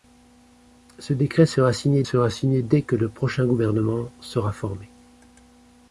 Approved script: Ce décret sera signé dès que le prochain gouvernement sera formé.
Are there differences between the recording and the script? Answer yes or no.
yes